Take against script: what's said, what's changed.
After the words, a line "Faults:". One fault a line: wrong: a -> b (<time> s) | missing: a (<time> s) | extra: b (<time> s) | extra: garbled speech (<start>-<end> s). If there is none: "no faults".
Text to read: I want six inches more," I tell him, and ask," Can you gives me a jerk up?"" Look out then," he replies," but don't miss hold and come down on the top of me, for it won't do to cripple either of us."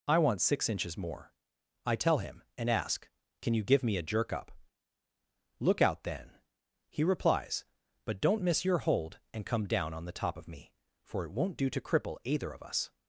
I want six inches more," I tell him, and ask," Can you give me a jerk up?"" Look out then," he replies," but don't miss your hold and come down on the top of me, for it won't do to cripple either of us."
Faults:
wrong: gives -> give (3.6 s)
extra: your (8.7 s)